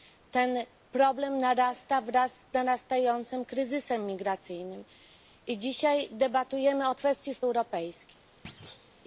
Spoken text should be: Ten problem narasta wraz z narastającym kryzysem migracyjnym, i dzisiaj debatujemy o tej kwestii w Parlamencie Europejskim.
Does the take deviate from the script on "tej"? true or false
true